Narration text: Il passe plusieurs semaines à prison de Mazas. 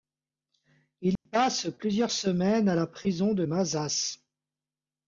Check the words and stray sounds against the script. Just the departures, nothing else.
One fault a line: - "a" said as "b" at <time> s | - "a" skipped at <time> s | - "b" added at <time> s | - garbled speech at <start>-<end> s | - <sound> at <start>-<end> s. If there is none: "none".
- dropout at 1.2-1.3 s
- "la" added at 2.7 s